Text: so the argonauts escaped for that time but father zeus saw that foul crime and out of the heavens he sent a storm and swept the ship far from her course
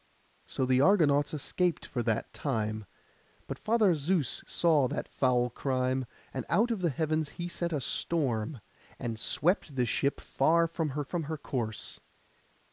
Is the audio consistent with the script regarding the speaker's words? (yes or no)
no